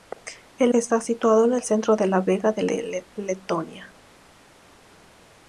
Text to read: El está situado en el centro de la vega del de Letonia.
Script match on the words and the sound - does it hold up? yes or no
yes